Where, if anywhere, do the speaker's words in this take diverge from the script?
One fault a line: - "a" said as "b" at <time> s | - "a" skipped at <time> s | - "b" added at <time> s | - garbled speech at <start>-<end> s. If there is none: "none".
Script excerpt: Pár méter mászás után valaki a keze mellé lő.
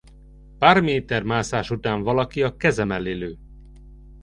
none